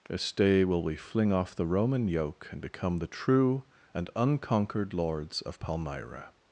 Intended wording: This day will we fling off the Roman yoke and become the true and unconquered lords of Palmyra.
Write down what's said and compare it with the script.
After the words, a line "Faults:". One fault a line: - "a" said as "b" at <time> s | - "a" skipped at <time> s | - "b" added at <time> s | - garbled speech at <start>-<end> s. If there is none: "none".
This day will we fling off the Roman yoke and become the true and unconquered lords of Palmyra.
Faults:
none